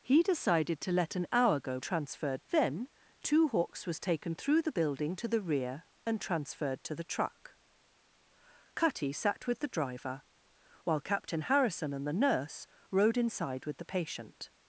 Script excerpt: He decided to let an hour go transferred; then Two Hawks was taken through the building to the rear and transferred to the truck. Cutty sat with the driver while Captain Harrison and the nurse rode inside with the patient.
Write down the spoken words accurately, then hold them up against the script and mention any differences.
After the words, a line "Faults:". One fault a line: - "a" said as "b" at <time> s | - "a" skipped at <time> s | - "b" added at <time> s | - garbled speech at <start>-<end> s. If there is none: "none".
He decided to let an hour go transferred; then Two Hawks was taken through the building to the rear and transferred to the truck. Cutty sat with the driver while Captain Harrison and the nurse rode inside with the patient.
Faults:
none